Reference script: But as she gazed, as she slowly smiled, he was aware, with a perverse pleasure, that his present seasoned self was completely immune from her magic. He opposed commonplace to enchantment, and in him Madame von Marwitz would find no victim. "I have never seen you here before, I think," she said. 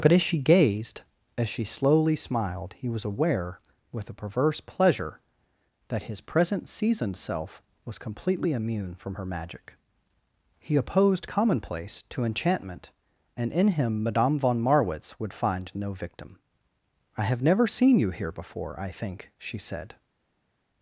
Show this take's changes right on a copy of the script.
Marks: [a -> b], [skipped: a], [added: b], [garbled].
But as she gazed, as she slowly smiled, he was aware, with a perverse pleasure, that his present seasoned self was completely immune from her magic. He opposed commonplace to enchantment, and in him Madame von Marwitz would find no victim. "I have never seen you here before, I think," she said.